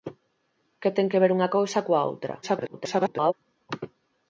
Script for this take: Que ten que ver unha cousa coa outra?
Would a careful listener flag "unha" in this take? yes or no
no